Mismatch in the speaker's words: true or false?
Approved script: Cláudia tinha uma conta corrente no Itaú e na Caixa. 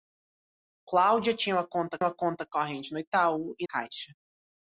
true